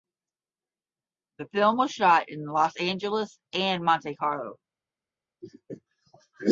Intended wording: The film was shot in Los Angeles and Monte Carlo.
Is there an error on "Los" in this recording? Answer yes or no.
no